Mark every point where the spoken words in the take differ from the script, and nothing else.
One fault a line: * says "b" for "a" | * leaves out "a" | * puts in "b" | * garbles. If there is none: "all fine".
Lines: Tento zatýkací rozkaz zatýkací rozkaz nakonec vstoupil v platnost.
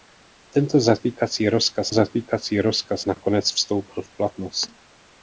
all fine